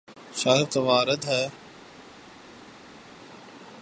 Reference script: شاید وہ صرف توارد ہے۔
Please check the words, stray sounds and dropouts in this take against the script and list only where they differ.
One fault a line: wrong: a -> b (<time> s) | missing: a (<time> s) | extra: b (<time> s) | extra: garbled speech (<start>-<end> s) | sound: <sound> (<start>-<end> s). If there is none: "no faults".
missing: وہ صرف (0.7 s)